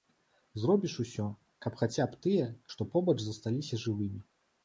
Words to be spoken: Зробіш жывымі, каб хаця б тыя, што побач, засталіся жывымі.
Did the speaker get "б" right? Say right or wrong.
right